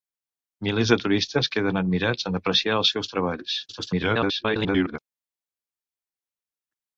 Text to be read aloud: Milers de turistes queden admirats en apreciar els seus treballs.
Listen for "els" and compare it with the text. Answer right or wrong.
right